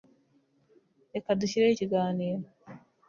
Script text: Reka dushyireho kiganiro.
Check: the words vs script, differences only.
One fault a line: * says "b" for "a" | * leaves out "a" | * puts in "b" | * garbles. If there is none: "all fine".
all fine